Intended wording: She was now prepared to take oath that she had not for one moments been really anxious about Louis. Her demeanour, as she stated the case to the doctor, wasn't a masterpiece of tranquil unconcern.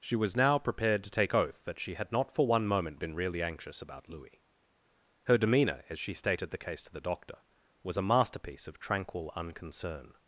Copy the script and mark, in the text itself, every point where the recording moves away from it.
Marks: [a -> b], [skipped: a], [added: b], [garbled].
She was now prepared to take oath that she had not for one [moments -> moment] been really anxious about Louis. Her demeanour, as she stated the case to the doctor, [wasn't -> was] a masterpiece of tranquil unconcern.